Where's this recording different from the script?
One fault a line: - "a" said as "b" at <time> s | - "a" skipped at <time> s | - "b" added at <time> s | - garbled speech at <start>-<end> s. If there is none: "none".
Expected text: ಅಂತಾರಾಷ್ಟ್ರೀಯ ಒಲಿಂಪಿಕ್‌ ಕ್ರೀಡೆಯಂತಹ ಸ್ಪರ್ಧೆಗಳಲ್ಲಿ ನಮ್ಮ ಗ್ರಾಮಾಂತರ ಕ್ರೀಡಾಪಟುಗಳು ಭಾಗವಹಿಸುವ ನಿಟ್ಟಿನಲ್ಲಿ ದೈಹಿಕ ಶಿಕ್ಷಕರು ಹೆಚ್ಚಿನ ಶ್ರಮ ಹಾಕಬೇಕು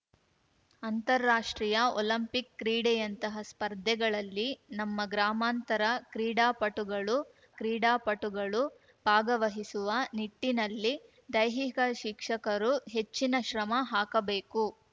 - "ಕ್ರೀಡಾಪಟುಗಳು" added at 7.6 s